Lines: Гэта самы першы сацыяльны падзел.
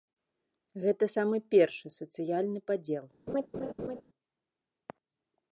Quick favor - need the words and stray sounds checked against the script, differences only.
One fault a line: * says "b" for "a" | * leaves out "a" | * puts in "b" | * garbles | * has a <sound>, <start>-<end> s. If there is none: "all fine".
* has a laugh, 3.3-4.0 s